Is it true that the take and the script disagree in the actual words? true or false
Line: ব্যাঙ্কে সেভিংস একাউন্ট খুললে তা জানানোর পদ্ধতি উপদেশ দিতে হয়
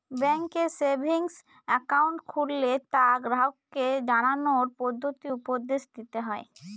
true